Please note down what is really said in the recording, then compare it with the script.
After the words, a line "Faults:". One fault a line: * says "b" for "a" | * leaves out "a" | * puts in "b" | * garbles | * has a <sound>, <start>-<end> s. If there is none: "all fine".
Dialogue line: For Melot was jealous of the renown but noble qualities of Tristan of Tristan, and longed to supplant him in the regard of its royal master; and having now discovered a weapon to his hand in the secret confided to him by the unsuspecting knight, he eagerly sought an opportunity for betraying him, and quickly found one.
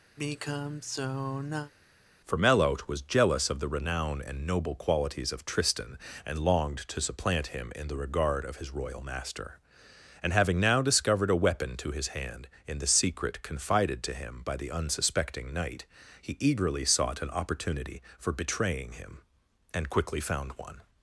For Melot was jealous of the renown and noble qualities of Tristan, and longed to supplant him in the regard of his royal master; and having now discovered a weapon to his hand in the secret confided to him by the unsuspecting knight, he eagerly sought an opportunity for betraying him, and quickly found one.
Faults:
* has a sigh, 0.2-1.7 s
* says "and" for "but"
* leaves out "of Tristan"
* says "his" for "its"